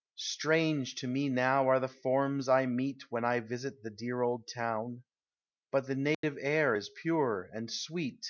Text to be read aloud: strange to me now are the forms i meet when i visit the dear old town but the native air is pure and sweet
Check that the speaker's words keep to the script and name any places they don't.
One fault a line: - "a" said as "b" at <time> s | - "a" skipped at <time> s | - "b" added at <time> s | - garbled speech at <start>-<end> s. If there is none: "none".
none